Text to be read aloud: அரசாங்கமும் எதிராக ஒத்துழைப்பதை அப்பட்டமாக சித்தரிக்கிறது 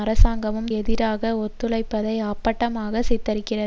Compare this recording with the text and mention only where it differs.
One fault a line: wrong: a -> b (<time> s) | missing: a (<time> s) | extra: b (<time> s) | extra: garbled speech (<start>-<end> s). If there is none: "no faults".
no faults